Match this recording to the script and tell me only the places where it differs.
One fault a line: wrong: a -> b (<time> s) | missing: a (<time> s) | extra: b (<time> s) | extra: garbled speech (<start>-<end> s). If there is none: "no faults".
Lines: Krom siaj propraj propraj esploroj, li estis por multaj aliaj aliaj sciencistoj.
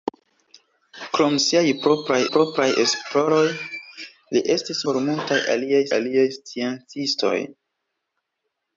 no faults